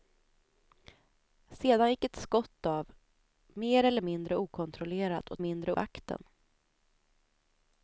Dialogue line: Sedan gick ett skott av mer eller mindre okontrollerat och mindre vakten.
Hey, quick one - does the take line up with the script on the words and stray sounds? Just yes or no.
yes